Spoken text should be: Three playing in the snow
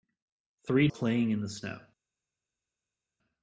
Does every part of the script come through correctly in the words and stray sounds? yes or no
yes